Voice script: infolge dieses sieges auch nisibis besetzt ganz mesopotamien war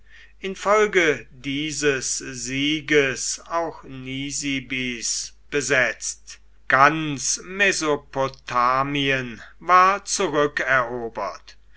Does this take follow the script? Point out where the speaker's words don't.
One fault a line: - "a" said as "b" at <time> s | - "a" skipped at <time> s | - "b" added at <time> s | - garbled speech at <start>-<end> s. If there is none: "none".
none